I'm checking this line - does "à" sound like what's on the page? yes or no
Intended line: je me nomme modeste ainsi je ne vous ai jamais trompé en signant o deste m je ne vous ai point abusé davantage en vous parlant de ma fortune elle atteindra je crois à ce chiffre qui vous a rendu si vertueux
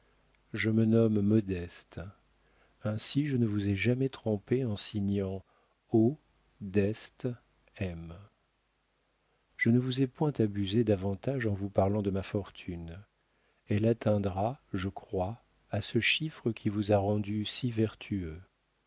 yes